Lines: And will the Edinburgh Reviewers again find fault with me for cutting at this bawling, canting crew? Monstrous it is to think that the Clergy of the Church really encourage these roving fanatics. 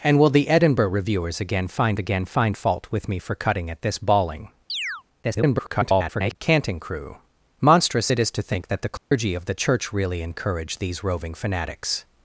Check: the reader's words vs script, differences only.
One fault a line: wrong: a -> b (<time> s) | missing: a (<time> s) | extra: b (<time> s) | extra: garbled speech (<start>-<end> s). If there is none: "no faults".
extra: again find (2.0 s)
extra: garbled speech (5.2-6.4 s)